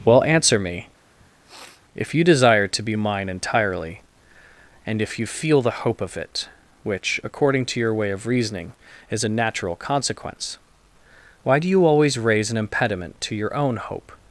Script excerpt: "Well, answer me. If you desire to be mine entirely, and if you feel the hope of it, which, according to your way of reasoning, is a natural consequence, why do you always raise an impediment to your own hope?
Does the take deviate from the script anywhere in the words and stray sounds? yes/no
yes